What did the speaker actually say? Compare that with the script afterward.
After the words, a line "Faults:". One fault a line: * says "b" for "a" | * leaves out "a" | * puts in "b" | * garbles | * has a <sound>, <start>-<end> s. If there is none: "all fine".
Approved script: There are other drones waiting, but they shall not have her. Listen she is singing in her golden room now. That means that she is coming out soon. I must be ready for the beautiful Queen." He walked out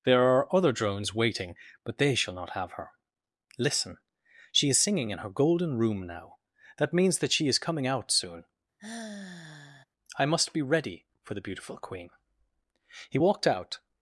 There are other drones waiting, but they shall not have her. Listen she is singing in her golden room now. That means that she is coming out soon. I must be ready for the beautiful Queen." He walked out
Faults:
* has a sigh, 8.8-9.8 s